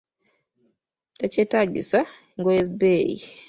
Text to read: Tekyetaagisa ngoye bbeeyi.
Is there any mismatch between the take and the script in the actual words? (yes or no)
no